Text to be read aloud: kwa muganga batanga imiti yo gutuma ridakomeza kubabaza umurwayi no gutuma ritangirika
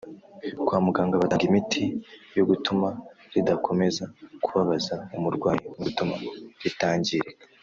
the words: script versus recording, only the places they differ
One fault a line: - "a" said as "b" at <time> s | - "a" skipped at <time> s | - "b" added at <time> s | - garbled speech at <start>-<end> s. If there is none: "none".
none